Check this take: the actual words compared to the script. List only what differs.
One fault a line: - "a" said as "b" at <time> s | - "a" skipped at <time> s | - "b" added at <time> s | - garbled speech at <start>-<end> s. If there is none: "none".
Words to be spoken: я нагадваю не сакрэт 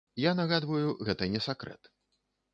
- "гэта" added at 1.1 s